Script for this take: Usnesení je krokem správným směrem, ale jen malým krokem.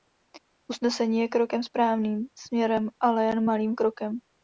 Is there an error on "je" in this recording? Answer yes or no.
no